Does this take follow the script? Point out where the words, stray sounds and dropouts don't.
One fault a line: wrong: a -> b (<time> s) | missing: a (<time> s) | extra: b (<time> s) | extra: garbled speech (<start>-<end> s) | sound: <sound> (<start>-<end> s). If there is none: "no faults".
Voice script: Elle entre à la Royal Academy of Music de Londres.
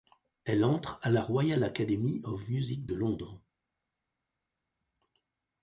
no faults